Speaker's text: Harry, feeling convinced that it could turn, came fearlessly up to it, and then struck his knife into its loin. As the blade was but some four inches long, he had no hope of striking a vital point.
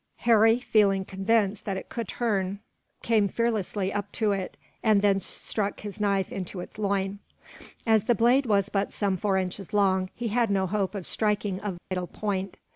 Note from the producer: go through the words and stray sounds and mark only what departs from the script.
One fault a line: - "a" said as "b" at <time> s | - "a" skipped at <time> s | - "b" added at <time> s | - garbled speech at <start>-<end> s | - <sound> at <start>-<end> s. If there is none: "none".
- dropout at 11.8-11.9 s